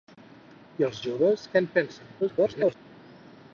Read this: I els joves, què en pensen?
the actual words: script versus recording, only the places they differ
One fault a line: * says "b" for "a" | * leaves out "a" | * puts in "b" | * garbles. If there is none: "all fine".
* garbles